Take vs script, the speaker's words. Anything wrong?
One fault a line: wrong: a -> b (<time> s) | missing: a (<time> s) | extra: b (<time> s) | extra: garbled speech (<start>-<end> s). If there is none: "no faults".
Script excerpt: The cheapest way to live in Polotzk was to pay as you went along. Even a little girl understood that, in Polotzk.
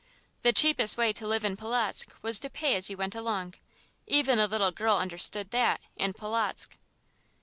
no faults